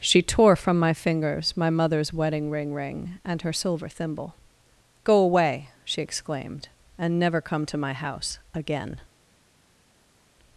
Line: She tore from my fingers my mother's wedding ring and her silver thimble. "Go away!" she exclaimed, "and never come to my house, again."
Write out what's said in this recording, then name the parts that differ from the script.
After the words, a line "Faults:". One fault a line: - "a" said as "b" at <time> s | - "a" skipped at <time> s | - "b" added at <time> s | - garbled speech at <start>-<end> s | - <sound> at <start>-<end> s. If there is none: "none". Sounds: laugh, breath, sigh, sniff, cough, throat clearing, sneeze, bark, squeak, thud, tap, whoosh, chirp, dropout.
She tore from my fingers my mother's wedding ring ring and her silver thimble. "Go away!" she exclaimed, "and never come to my house, again."
Faults:
- "ring" added at 2.7 s